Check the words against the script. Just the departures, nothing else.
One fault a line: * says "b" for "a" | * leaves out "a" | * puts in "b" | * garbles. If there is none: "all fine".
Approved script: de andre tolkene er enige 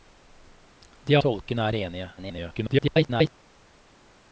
* leaves out "andre"
* garbles